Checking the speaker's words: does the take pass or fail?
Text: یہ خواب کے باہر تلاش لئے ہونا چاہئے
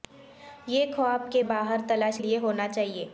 pass